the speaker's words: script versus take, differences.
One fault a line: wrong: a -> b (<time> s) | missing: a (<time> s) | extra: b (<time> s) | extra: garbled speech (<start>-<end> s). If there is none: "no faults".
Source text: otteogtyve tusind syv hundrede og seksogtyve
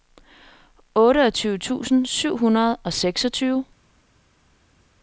no faults